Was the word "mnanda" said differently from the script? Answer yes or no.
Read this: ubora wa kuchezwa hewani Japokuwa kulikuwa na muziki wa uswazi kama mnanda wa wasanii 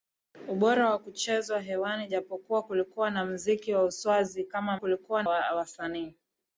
yes